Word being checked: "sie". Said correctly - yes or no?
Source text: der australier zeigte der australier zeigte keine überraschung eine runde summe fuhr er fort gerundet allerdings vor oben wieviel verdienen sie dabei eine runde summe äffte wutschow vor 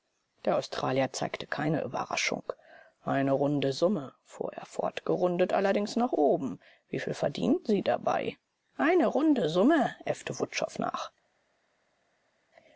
yes